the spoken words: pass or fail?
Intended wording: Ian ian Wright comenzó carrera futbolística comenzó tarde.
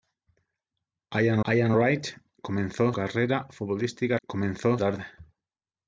pass